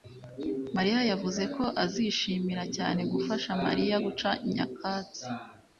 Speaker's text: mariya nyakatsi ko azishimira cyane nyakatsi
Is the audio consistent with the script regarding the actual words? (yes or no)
no